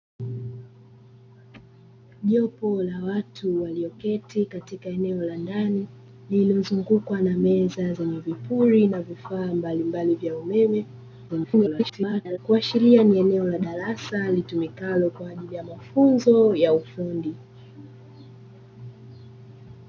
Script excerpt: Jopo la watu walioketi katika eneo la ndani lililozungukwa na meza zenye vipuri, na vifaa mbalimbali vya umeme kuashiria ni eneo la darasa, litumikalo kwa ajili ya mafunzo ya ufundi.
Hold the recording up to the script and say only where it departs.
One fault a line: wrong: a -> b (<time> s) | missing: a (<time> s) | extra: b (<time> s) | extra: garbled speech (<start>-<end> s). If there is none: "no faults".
extra: garbled speech (11.3-12.4 s)